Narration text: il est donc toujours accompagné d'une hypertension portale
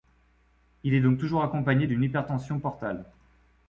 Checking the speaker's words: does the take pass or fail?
pass